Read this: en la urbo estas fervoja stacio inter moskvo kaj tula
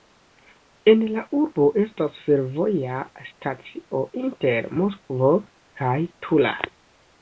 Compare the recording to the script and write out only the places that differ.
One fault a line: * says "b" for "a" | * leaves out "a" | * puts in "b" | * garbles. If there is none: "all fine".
all fine